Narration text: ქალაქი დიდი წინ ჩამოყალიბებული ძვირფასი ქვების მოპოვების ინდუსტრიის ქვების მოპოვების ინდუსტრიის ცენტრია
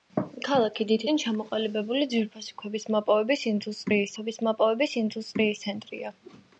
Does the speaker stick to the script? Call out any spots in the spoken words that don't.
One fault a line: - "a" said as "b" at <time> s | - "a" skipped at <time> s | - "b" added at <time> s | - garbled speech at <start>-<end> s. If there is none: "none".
none